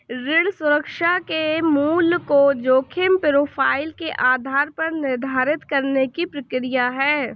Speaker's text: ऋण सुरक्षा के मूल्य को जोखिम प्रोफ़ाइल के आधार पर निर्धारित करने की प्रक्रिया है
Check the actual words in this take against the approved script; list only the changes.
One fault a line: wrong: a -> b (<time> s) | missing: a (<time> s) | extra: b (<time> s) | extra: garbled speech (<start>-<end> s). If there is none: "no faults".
no faults